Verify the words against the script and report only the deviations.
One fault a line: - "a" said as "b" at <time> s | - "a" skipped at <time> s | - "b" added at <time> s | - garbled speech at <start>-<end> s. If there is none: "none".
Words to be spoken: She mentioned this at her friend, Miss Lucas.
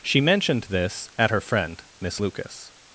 none